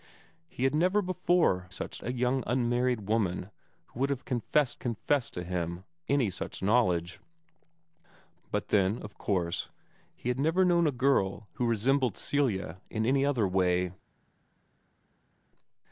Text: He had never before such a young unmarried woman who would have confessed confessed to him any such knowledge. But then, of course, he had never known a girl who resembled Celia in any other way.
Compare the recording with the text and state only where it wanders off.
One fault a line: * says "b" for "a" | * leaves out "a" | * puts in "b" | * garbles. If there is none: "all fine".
all fine